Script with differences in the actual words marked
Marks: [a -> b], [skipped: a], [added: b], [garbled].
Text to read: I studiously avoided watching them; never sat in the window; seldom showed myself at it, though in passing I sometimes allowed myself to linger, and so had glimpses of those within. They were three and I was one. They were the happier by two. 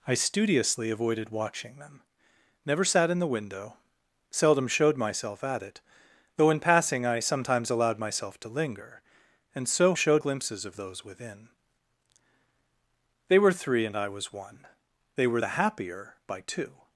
I studiously avoided watching them; never sat in the window; seldom showed myself at it, though in passing I sometimes allowed myself to linger, and so [had -> showed] glimpses of those within. They were three and I was one. They were the happier by two.